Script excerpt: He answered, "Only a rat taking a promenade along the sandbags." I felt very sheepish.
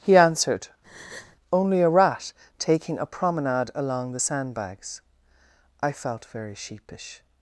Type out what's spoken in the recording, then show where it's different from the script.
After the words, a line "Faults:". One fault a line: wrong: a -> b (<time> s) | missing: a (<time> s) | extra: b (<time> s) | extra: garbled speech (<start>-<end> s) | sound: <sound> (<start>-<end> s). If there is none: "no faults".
He answered, "Only a rat taking a promenade along the sandbags." I felt very sheepish.
Faults:
sound: breath (0.8-1.4 s)